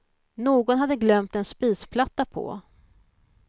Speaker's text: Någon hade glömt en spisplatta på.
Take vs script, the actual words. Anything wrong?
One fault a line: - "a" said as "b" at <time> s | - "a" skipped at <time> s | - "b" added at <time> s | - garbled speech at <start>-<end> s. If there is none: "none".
none